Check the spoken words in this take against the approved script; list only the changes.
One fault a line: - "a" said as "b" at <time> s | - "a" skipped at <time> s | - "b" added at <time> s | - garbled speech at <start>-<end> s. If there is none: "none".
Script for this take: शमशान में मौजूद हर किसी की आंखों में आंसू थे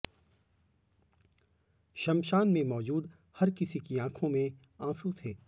none